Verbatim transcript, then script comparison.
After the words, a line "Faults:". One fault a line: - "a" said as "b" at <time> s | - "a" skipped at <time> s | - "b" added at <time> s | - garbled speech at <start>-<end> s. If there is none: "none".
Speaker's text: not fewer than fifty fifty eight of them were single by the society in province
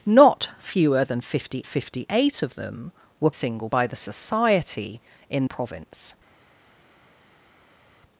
not fewer than fifty fifty eight of them were single by the society in province
Faults:
none